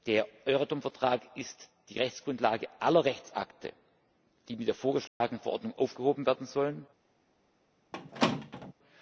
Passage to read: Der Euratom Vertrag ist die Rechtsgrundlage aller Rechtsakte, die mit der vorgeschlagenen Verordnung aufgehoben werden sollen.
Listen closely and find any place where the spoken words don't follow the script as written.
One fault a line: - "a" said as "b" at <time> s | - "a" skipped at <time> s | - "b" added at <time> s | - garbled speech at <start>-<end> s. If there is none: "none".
none